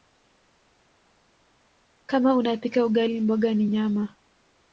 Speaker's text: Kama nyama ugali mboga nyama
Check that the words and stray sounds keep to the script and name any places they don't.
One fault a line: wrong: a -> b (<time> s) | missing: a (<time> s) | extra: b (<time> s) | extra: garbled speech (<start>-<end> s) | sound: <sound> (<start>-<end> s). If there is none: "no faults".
wrong: nyama -> unapika (2.3 s)
extra: ni (3.5 s)